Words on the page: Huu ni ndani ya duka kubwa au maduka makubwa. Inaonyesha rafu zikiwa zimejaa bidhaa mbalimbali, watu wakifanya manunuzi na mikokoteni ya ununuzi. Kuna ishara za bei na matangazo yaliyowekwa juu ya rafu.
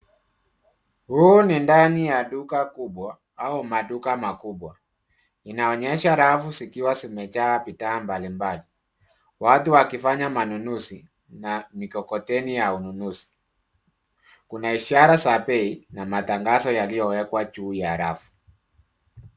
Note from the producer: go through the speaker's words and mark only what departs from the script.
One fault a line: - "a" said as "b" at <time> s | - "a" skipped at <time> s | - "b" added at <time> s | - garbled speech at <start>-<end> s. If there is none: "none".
none